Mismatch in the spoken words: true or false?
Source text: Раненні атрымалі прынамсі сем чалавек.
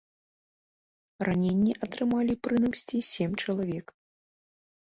false